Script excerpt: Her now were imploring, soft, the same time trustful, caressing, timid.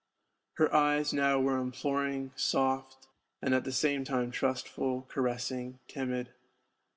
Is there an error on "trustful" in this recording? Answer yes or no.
no